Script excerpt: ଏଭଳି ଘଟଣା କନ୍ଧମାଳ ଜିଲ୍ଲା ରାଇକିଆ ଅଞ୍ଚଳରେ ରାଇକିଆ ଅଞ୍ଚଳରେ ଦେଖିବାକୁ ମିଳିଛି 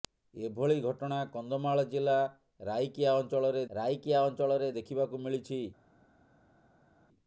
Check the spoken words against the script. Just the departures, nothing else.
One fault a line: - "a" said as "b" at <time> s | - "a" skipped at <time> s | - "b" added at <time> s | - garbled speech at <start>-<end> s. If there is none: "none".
none